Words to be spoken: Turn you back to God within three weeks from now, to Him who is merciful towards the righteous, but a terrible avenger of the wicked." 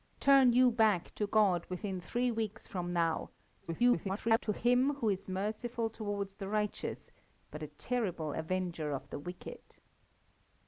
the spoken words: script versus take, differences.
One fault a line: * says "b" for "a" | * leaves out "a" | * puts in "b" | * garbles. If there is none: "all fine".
* garbles